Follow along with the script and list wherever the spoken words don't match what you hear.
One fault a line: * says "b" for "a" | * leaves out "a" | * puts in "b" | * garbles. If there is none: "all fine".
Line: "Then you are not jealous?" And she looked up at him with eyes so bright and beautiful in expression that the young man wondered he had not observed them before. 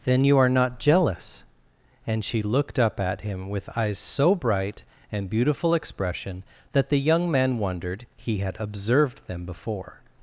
* leaves out "in"
* leaves out "not"